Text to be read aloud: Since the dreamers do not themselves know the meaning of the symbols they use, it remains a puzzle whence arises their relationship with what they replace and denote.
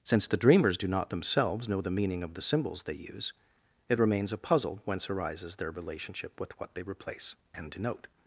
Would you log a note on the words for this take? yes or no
no